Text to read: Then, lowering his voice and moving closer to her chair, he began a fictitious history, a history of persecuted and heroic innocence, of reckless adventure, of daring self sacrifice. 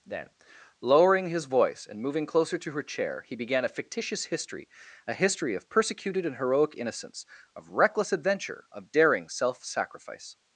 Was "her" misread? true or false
false